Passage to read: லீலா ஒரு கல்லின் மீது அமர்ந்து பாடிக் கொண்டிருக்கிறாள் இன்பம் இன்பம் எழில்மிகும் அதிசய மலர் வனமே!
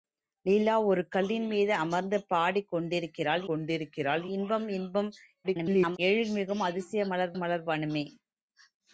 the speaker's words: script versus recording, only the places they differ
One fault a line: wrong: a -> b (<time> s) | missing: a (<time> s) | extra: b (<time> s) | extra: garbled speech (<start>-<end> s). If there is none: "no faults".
extra: கொண்டிருக்கிறாள் (3.5 s)
extra: garbled speech (5.4-6.0 s)
extra: மலர் (7.4 s)